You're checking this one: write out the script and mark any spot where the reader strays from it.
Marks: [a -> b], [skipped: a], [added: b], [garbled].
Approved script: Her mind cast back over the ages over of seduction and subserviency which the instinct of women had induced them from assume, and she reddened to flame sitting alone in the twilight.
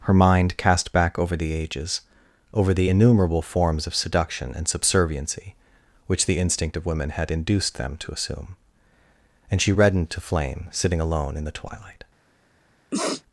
Her mind cast back over the ages over [added: the innumerable forms] of seduction and subserviency which the instinct of women had induced them [from -> to] assume, and she reddened to flame sitting alone in the twilight.